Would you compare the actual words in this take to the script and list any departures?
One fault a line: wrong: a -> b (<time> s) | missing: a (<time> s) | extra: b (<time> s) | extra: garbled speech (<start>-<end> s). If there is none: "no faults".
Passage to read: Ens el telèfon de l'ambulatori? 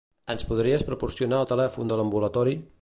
extra: podries proporcionar (0.5 s)